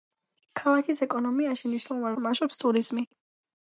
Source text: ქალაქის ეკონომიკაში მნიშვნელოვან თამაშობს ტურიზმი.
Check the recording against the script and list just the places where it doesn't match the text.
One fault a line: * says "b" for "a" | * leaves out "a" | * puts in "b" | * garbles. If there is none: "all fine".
all fine